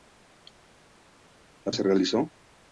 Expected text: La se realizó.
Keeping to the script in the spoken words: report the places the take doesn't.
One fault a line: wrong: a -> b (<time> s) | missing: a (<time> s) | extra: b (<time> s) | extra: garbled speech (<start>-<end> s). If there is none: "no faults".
no faults